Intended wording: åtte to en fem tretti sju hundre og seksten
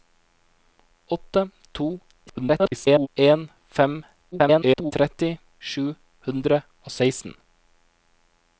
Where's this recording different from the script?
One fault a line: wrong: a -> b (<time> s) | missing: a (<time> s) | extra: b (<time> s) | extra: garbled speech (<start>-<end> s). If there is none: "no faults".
extra: garbled speech (2.3-3.1 s)
extra: garbled speech (4.3-4.9 s)